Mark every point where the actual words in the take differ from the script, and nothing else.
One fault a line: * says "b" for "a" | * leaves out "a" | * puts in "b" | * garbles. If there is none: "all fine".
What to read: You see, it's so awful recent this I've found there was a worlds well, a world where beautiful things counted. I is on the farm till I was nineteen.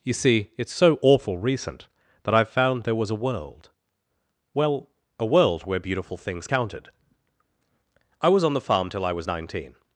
* says "that" for "this"
* says "world" for "worlds"
* says "was" for "is"